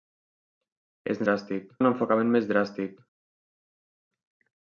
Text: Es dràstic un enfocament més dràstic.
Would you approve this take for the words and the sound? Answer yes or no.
yes